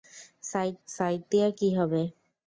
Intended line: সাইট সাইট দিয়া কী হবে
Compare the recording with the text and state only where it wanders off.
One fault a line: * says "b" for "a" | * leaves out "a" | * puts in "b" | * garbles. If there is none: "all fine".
all fine